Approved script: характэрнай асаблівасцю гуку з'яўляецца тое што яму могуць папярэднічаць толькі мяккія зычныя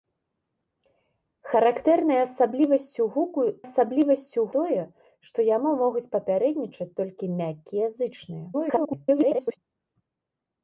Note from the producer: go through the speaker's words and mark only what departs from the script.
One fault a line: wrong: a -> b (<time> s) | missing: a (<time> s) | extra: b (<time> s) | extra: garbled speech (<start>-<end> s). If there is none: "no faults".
wrong: з'яўляецца -> асаблівасцю (3.6 s)
extra: garbled speech (8.5-9.6 s)